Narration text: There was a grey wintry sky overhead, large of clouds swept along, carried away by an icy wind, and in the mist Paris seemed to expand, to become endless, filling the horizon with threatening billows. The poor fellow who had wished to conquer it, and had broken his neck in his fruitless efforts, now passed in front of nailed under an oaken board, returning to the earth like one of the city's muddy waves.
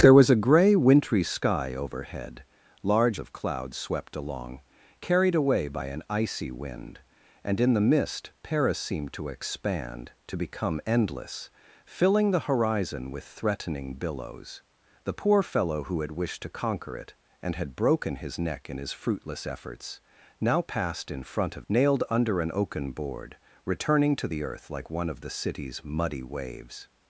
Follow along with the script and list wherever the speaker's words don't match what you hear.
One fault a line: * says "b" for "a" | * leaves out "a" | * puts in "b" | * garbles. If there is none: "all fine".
all fine